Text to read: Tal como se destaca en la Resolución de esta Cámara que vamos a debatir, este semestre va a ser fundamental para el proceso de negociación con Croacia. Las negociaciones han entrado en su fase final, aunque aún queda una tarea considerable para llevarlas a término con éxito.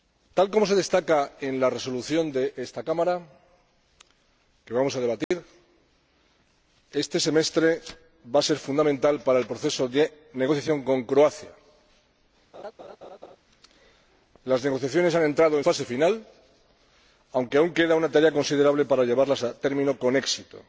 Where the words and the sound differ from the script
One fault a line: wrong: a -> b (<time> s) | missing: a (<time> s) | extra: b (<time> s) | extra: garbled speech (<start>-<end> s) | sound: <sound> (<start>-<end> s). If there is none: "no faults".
sound: dropout (5.2-5.3 s)
sound: laugh (12.5-13.4 s)
missing: su (15.6 s)